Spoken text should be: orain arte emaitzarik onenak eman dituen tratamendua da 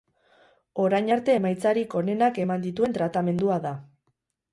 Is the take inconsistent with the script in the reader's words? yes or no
no